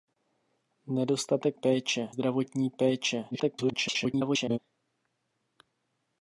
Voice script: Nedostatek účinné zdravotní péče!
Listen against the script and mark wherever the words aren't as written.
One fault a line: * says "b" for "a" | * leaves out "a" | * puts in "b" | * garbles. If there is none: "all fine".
* says "péče" for "účinné"
* garbles